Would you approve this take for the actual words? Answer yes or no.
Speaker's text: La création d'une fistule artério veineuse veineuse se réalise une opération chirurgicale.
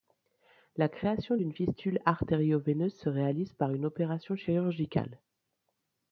no